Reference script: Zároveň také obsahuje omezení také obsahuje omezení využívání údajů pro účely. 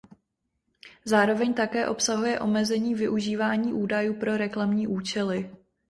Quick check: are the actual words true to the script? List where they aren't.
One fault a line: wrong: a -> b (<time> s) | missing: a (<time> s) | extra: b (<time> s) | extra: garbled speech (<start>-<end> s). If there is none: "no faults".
missing: také obsahuje omezení (3.0 s)
extra: reklamní (4.4 s)